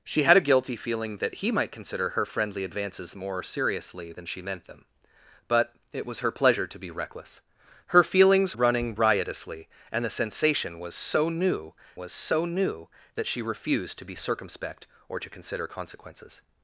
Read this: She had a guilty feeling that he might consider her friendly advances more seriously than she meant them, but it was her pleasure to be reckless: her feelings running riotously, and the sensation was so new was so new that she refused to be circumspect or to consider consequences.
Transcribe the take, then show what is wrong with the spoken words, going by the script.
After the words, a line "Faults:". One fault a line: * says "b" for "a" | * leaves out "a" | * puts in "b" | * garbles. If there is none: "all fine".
She had a guilty feeling that he might consider her friendly advances more seriously than she meant them, but it was her pleasure to be reckless: her feelings running riotously, and the sensation was so new was so new that she refused to be circumspect or to consider consequences.
Faults:
all fine